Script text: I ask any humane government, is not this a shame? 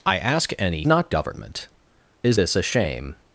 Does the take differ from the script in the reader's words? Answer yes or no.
yes